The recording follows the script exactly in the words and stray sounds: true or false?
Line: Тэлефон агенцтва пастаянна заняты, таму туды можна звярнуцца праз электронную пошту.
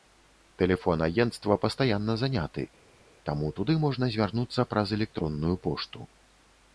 true